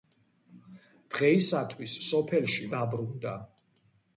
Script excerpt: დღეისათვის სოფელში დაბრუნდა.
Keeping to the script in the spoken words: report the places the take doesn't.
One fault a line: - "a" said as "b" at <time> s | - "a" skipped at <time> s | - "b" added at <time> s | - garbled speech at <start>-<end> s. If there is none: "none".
none